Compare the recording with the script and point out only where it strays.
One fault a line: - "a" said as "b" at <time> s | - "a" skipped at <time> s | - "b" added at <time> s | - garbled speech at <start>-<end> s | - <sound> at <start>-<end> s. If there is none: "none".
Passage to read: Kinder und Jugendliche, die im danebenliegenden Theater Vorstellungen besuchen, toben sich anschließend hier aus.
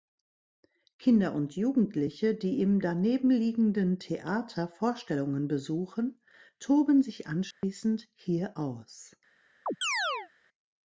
- dropout at 7.5-7.6 s
- chirp at 9.7-10.3 s